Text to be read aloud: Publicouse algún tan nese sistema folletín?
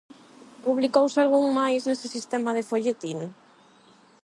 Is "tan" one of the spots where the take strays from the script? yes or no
yes